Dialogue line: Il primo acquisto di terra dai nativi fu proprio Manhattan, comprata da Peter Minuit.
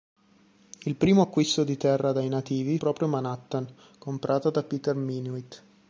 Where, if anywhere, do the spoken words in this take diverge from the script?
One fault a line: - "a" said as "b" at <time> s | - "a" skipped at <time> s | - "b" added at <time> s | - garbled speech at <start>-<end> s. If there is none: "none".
- "fu" skipped at 2.8 s